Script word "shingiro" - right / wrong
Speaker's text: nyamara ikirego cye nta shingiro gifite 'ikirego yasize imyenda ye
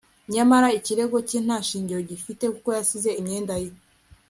right